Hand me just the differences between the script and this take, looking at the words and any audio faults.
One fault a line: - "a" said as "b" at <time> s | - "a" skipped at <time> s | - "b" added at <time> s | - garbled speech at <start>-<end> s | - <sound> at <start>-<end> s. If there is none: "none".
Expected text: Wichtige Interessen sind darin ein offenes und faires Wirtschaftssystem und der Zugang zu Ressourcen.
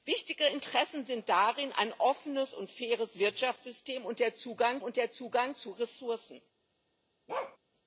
- "und der Zugang" added at 4.8 s
- bark at 7.3-7.6 s